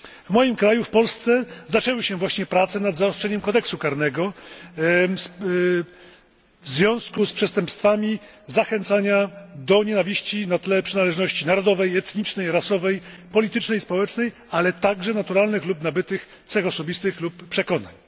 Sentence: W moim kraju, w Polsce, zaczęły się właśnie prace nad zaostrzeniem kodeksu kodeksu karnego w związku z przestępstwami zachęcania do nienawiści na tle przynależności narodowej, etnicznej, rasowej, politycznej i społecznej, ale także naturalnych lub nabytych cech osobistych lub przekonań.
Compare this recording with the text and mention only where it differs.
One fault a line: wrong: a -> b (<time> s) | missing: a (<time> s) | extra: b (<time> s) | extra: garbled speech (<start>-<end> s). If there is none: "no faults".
missing: kodeksu (3.8 s)